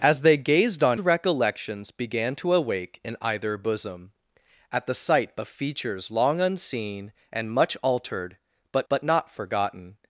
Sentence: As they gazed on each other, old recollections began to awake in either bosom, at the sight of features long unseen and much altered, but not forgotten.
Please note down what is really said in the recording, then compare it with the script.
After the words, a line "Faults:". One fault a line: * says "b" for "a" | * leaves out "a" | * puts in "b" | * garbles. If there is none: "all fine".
As they gazed on recollections began to awake in either bosom, at the sight of features long unseen and much altered, but but not forgotten.
Faults:
* leaves out "each other old"
* puts in "but"